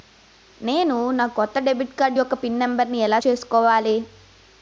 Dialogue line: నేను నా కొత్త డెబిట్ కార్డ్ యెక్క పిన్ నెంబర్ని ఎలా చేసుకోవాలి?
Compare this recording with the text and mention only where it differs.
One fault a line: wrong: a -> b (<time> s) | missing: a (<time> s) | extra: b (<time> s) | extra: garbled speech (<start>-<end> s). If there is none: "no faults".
no faults